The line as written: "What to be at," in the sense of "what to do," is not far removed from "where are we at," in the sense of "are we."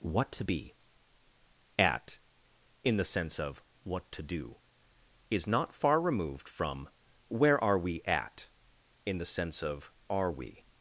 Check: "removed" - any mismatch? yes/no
no